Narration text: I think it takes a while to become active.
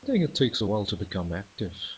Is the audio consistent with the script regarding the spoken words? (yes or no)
yes